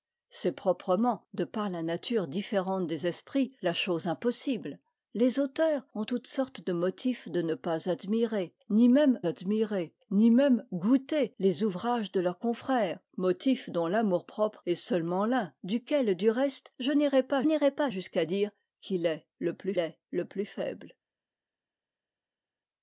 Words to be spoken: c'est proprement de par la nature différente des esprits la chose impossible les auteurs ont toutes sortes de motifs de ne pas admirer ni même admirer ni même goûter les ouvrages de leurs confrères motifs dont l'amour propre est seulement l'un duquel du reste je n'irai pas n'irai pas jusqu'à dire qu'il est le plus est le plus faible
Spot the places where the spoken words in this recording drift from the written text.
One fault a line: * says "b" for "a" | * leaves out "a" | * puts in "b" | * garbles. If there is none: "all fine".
all fine